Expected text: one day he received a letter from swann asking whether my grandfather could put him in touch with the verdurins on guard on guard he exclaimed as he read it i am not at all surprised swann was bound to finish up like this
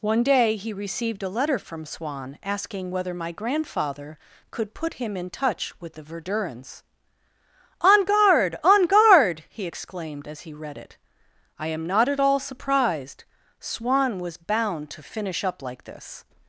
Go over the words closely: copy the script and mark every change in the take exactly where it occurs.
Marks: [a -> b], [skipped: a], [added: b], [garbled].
one day he received a letter from swann asking whether my grandfather could put him in touch with the verdurins on guard on guard he exclaimed as he read it i am not at all surprised swann was bound to finish up like this